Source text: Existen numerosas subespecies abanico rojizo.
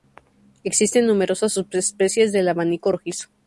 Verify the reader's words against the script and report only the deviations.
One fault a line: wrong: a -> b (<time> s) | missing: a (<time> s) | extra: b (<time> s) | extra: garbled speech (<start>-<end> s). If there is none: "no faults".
extra: del (2.3 s)